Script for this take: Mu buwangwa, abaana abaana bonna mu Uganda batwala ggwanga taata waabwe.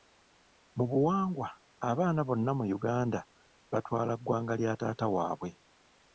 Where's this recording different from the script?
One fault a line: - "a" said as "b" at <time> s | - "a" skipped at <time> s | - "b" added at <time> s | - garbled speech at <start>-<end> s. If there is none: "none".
- "abaana" skipped at 2.2 s
- "lya" added at 4.6 s